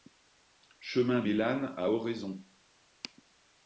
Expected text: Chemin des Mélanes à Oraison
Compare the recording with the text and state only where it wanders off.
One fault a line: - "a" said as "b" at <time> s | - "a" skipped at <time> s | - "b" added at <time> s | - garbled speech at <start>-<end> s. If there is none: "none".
- "des" skipped at 1.2 s